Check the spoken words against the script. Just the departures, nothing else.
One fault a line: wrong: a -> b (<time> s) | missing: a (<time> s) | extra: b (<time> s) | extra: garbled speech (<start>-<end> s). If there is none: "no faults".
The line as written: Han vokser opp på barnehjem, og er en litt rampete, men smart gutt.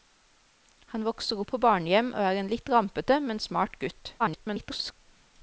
extra: garbled speech (4.2-4.9 s)